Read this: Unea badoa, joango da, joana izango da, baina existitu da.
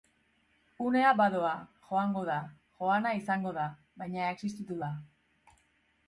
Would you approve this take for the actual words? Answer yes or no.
yes